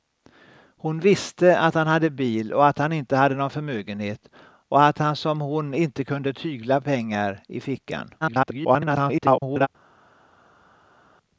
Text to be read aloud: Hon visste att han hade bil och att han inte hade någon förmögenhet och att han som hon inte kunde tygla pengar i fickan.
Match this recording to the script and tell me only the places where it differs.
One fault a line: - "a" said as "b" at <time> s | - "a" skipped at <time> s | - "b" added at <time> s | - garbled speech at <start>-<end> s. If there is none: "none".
- garbled speech at 8.2-9.7 s